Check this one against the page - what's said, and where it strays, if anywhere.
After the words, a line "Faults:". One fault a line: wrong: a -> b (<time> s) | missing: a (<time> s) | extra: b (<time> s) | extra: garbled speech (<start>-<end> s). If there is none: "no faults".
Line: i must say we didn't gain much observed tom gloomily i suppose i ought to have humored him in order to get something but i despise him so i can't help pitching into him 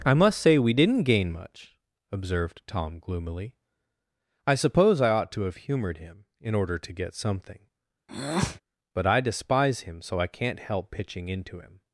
i must say we didn't gain much observed tom gloomily i suppose i ought to have humored him in order to get something but i despise him so i can't help pitching into him
Faults:
no faults